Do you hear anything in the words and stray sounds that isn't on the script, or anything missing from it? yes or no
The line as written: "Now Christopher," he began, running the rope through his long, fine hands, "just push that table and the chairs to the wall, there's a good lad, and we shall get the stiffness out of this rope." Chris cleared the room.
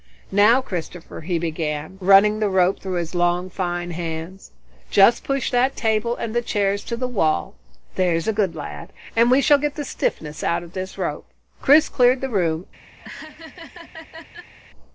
yes